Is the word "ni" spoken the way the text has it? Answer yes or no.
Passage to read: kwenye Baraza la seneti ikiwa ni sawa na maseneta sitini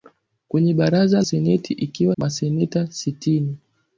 no